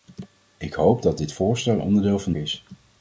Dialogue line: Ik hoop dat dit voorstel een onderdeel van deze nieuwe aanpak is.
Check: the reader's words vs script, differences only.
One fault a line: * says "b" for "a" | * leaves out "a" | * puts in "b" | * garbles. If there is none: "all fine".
* leaves out "een"
* leaves out "deze nieuwe aanpak"